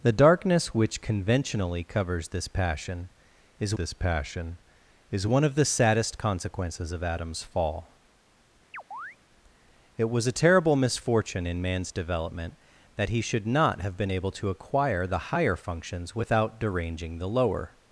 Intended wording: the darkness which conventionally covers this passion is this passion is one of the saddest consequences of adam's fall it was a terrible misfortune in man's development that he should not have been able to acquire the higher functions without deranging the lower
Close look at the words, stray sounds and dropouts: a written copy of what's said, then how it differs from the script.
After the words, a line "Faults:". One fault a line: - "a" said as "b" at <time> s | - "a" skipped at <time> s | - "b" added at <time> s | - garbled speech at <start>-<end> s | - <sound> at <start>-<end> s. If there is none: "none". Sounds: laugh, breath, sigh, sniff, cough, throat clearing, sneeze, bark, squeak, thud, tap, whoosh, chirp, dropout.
the darkness which conventionally covers this passion is this passion is one of the saddest consequences of adam's fall it was a terrible misfortune in man's development that he should not have been able to acquire the higher functions without deranging the lower
Faults:
- chirp at 8.7-9.2 s